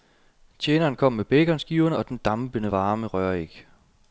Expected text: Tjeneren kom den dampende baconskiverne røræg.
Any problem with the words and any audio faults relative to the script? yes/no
yes